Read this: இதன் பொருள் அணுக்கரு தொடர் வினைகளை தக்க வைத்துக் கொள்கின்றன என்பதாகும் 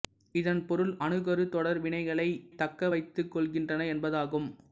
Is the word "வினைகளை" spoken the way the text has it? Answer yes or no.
yes